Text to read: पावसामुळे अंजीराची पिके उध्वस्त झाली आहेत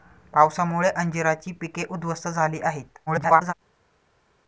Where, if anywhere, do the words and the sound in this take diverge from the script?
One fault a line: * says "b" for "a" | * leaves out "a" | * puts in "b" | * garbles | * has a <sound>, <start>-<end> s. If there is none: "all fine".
* garbles